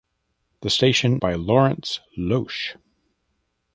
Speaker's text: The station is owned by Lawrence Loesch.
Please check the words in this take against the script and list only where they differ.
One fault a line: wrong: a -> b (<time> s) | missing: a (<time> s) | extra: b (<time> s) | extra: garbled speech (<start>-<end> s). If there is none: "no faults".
missing: is owned (1.2 s)